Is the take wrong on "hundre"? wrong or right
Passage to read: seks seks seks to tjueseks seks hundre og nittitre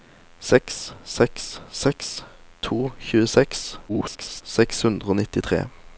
right